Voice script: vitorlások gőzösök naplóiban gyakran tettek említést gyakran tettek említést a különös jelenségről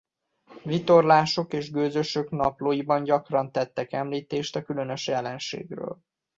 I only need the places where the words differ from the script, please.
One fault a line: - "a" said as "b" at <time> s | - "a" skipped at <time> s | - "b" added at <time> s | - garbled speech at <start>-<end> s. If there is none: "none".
- "és" added at 1.5 s
- "gyakran tettek említést" skipped at 4.5 s